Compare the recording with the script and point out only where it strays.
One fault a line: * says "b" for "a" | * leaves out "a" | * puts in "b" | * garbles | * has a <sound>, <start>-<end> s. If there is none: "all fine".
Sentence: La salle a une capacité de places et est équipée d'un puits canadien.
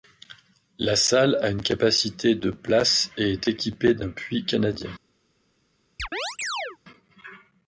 * has a chirp, 6.0-6.8 s